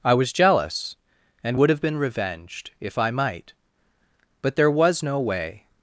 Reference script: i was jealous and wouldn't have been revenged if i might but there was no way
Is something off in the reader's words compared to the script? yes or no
yes